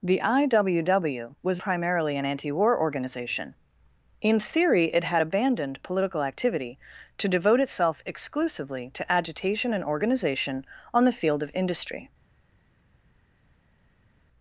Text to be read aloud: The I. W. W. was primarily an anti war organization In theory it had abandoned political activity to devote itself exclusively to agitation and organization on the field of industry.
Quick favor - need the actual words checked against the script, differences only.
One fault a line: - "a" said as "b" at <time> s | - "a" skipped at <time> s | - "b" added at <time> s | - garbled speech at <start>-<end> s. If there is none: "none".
none